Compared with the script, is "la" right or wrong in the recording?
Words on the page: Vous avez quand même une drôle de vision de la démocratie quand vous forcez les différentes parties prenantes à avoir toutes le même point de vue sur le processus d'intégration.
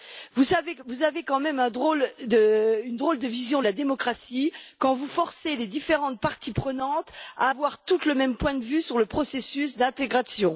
right